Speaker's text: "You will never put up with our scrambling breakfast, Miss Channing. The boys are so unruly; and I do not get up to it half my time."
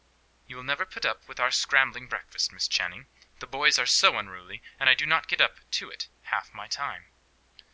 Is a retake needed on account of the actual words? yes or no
no